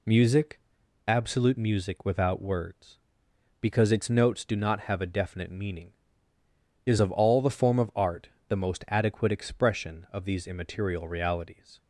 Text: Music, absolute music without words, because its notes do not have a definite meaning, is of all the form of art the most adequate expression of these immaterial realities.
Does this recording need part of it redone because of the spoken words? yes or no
no